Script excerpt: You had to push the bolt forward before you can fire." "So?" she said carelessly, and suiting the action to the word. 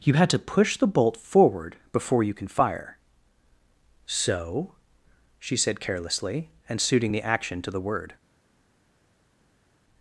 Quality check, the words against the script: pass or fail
pass